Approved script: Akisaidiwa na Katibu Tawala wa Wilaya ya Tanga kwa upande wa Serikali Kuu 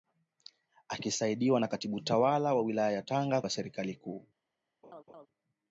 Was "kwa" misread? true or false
true